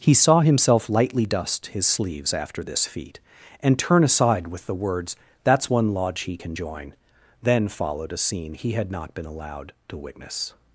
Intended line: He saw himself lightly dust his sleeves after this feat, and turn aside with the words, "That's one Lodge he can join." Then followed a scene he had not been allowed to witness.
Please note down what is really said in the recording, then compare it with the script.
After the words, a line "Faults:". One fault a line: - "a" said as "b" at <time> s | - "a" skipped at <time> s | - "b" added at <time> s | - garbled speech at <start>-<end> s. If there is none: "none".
He saw himself lightly dust his sleeves after this feat, and turn aside with the words, "That's one Lodge he can join." Then followed a scene he had not been allowed to witness.
Faults:
none